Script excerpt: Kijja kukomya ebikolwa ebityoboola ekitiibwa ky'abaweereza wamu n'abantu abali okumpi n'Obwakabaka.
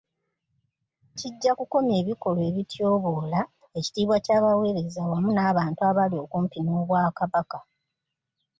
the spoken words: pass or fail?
pass